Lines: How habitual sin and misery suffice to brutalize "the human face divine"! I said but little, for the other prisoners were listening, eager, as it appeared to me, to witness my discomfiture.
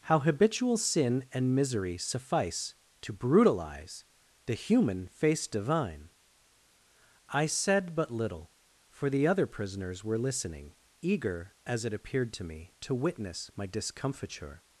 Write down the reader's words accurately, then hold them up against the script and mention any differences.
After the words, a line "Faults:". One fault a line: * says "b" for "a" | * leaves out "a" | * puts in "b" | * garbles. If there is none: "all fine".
How habitual sin and misery suffice to brutalize "the human face divine"! I said but little, for the other prisoners were listening, eager, as it appeared to me, to witness my discomfiture.
Faults:
all fine